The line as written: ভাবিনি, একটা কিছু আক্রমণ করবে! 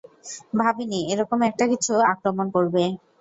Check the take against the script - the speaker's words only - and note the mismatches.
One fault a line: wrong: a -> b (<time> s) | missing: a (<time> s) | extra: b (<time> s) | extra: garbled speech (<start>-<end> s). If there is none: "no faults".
extra: এরকম (1.1 s)